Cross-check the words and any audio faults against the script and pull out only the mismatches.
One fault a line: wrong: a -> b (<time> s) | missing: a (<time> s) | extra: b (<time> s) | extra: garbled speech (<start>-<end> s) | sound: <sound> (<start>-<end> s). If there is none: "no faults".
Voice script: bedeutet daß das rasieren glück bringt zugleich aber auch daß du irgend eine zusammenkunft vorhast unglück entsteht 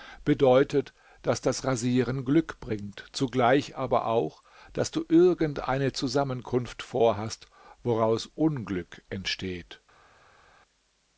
extra: woraus (7.8 s)